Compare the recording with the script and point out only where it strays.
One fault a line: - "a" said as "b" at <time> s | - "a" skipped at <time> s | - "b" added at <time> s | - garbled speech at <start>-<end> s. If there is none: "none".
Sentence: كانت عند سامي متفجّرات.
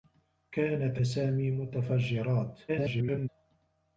- "عند" skipped at 1.0 s
- garbled speech at 2.7-3.3 s